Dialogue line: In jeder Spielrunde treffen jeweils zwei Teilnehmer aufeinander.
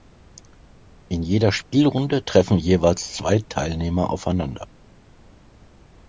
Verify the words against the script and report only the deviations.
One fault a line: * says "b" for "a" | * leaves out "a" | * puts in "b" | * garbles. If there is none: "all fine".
all fine